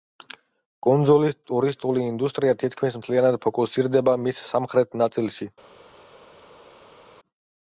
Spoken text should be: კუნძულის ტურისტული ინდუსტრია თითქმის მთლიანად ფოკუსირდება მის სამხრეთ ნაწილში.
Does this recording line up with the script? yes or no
yes